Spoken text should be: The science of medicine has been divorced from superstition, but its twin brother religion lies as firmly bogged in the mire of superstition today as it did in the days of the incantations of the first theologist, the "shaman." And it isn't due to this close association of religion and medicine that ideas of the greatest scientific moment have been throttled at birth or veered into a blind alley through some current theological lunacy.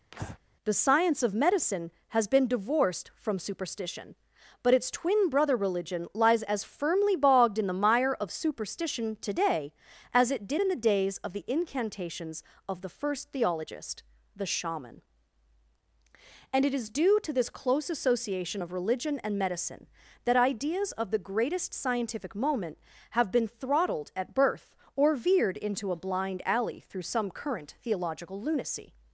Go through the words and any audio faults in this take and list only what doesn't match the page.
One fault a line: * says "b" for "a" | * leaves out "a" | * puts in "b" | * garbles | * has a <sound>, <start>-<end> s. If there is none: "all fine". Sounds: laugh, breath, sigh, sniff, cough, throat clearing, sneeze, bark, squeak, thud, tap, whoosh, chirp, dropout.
* has a breath, 0.1-0.4 s
* says "is" for "isn't"